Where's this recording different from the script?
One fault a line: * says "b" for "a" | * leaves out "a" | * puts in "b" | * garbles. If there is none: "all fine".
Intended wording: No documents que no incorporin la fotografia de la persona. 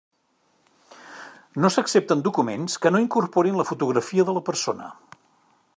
* puts in "s'accepten"